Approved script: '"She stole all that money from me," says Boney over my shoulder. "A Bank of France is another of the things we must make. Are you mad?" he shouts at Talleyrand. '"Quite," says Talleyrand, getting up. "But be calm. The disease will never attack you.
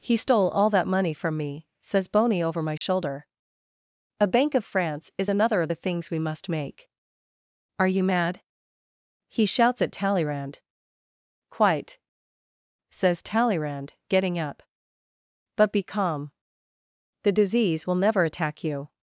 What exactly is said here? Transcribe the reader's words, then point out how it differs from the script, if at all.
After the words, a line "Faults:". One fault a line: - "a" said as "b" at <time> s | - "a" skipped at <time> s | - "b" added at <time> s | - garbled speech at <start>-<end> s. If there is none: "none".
'"He stole all that money from me," says Boney over my shoulder. "A Bank of France is another of the things we must make. Are you mad?" he shouts at Talleyrand. '"Quite," says Talleyrand, getting up. "But be calm. The disease will never attack you.
Faults:
- "She" said as "He" at 0.0 s